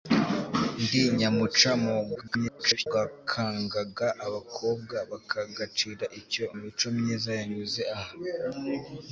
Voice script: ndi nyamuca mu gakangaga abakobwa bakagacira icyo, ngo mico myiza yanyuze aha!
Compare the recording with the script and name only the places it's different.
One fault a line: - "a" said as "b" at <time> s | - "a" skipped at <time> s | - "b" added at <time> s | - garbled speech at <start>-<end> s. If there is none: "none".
- garbled speech at 2.2-2.9 s
- "ngo" skipped at 6.4 s